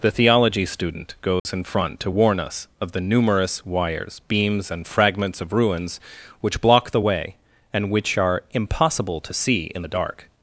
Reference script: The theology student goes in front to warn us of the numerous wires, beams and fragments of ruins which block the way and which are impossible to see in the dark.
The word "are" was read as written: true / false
true